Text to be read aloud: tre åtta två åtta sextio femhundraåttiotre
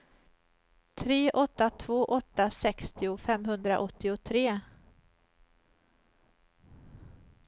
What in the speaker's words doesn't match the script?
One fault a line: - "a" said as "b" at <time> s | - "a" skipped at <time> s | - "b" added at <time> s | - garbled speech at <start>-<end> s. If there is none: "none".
none